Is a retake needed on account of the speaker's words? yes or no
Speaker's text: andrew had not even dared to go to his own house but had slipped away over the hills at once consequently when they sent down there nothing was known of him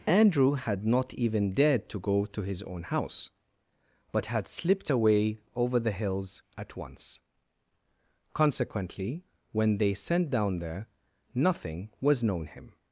yes